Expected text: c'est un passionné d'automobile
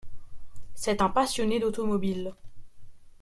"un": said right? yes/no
yes